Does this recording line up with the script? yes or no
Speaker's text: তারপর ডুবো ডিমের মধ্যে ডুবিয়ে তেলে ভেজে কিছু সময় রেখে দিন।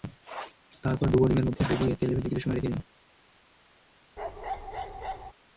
yes